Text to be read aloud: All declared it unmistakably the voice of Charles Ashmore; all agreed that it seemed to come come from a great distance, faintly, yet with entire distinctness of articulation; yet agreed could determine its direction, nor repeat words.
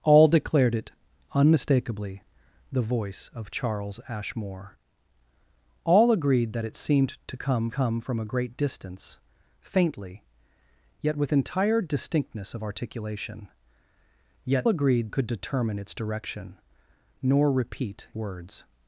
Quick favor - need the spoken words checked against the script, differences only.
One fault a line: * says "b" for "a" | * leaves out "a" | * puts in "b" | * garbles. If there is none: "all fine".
all fine